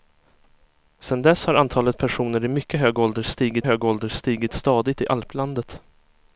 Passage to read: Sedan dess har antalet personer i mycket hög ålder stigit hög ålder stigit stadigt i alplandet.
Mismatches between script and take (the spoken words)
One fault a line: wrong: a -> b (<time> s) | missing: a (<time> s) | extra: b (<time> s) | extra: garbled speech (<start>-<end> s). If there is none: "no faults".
no faults